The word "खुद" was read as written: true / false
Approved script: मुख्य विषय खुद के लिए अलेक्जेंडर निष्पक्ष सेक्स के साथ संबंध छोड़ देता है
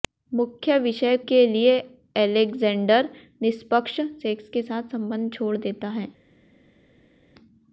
false